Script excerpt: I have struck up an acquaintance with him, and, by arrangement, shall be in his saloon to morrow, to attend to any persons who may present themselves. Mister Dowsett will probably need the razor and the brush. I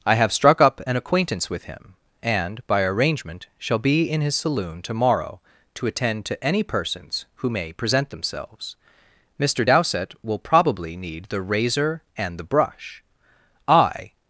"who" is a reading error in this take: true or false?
false